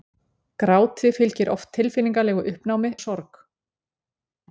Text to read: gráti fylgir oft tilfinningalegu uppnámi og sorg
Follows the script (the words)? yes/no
yes